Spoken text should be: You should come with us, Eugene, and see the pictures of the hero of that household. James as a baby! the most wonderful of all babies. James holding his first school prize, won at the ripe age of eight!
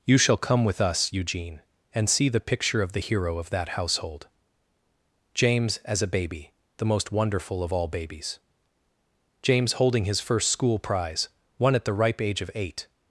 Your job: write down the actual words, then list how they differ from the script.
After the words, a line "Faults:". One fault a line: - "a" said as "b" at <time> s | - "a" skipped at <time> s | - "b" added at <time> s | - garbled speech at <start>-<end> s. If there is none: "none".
You shall come with us, Eugene, and see the picture of the hero of that household. James as a baby! the most wonderful of all babies. James holding his first school prize, won at the ripe age of eight!
Faults:
- "should" said as "shall" at 0.2 s
- "pictures" said as "picture" at 2.4 s